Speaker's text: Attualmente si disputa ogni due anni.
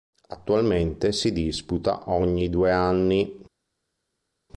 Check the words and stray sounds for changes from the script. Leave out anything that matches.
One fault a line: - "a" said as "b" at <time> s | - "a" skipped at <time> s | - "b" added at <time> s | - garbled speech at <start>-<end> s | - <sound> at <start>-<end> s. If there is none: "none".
none